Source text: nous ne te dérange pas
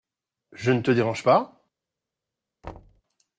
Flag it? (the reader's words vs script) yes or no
yes